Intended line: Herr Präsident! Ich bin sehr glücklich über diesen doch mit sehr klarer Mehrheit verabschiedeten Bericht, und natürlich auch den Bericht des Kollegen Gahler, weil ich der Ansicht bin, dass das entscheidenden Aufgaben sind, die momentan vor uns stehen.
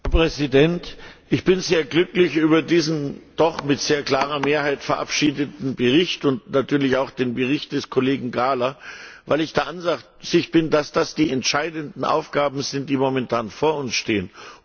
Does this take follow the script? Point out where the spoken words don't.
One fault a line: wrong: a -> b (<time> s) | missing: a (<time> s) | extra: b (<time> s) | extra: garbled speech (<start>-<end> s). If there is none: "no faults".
extra: die (11.1 s)